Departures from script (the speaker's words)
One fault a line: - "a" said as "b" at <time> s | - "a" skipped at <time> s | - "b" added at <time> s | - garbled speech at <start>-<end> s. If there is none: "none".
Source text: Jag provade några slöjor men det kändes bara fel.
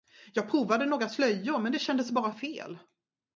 none